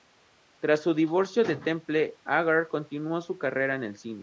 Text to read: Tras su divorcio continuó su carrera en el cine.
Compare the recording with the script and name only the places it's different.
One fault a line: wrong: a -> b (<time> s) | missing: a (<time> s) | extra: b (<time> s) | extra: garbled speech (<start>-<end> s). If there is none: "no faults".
extra: de Temple Agar (1.4 s)